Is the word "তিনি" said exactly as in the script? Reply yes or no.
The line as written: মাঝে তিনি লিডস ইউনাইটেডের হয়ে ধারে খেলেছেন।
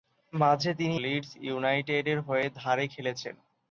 yes